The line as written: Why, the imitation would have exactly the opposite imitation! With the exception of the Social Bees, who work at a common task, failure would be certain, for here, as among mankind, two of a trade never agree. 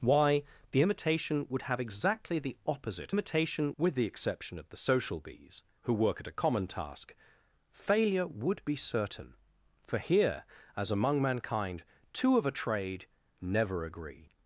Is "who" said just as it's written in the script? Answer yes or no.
yes